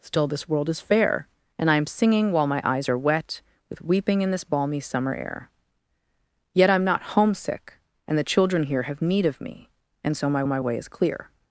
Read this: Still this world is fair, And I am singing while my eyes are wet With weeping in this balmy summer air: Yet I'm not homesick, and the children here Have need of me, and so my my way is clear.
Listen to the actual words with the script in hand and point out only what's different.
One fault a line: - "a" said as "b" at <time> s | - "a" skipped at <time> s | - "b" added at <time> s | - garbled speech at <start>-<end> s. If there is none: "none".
none